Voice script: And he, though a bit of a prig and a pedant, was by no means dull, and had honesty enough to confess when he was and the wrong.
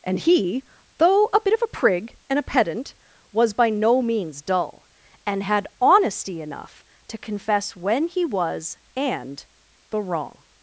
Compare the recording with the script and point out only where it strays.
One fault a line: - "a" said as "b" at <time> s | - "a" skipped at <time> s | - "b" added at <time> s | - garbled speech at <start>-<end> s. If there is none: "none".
none